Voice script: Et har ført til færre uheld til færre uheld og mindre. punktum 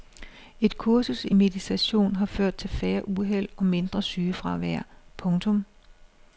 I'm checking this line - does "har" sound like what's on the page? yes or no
no